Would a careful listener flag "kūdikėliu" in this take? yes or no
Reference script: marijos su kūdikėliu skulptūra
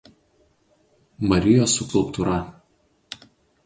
yes